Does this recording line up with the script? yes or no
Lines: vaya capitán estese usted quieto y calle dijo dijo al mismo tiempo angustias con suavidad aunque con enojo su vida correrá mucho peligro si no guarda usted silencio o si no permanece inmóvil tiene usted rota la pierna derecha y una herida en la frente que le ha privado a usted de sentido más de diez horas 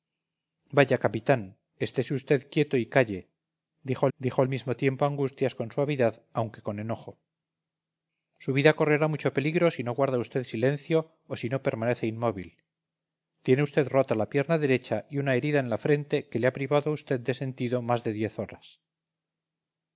yes